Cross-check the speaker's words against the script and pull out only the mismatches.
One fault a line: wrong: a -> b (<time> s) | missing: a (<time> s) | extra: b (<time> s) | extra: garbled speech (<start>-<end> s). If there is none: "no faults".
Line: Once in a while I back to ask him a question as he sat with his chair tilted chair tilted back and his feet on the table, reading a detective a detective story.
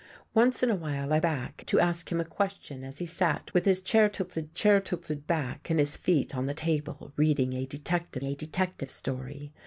no faults